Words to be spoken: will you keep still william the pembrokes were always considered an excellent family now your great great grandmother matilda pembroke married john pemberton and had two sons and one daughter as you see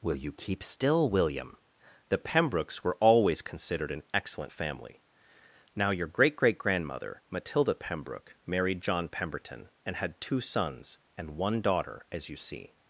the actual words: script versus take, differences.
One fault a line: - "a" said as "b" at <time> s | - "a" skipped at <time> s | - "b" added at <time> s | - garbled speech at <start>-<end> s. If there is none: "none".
none